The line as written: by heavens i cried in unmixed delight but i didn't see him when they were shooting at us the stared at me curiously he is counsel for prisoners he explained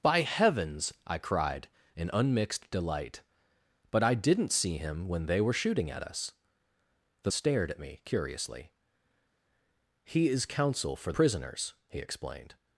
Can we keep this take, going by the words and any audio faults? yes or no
yes